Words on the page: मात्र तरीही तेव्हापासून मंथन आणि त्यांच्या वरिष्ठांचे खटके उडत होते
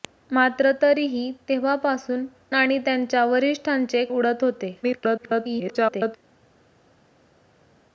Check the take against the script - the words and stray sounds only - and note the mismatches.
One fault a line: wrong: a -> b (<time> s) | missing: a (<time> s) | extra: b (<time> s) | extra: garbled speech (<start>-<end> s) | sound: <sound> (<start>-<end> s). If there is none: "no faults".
missing: मंथन (2.2 s)
missing: खटके (4.0 s)
extra: garbled speech (4.8-6.2 s)